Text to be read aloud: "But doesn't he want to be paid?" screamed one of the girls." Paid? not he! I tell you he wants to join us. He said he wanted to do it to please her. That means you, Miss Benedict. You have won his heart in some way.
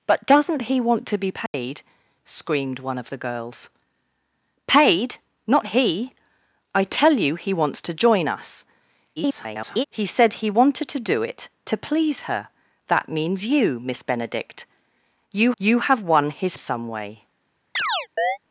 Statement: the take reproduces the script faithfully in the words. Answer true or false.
false